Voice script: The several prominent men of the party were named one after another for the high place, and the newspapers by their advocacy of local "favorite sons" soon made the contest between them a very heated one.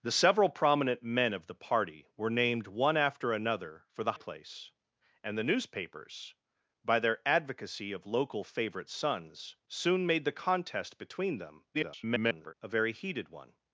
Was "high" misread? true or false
true